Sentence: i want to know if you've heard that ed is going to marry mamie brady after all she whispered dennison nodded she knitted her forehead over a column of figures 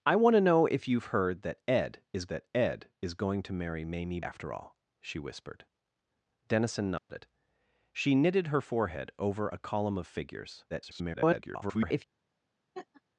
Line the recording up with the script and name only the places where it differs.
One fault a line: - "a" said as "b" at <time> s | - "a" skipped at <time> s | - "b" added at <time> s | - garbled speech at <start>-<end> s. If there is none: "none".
- "that ed is" added at 2.3 s
- "brady" skipped at 4.2 s
- garbled speech at 10.7-12.0 s